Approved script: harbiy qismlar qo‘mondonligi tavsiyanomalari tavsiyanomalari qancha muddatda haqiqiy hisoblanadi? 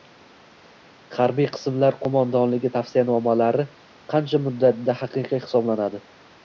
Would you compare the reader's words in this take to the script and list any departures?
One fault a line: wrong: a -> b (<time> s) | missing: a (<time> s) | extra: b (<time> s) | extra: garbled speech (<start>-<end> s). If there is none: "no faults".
missing: tavsiyanomalari (3.7 s)